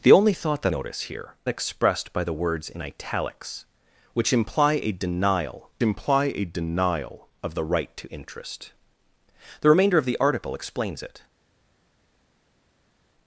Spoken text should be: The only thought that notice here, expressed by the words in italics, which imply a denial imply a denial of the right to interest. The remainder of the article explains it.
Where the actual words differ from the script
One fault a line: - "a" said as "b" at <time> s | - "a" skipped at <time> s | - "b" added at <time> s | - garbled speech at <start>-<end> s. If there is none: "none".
none